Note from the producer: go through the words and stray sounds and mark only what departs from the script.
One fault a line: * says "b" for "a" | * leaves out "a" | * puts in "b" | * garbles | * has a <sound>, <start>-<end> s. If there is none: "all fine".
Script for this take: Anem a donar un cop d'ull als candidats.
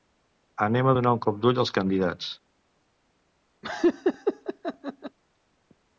* has a laugh, 3.6-5.2 s